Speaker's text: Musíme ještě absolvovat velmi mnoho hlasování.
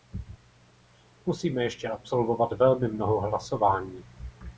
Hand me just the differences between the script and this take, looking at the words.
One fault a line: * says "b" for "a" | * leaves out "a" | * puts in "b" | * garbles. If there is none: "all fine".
all fine